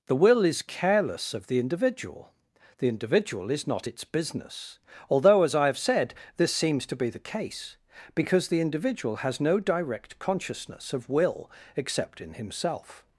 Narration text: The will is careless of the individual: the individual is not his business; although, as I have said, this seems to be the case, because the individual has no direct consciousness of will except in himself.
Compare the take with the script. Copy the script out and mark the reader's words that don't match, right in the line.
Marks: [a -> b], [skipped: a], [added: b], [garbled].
The will is careless of the individual: the individual is not [his -> its] business; although, as I have said, this seems to be the case, because the individual has no direct consciousness of will except in himself.